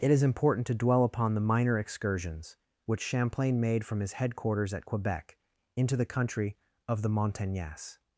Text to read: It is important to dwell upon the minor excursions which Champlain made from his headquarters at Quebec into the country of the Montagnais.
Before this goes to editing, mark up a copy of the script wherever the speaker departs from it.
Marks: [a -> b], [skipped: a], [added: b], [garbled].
It is important to dwell upon the minor excursions which Champlain made from his headquarters at Quebec into the country of the Montagnais.